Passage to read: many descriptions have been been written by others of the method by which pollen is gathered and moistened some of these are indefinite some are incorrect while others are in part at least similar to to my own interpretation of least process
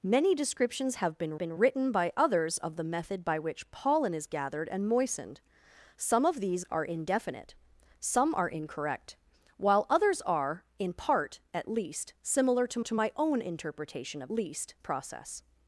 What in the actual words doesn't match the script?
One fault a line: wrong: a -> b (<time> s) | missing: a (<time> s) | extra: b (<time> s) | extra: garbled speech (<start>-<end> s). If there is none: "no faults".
no faults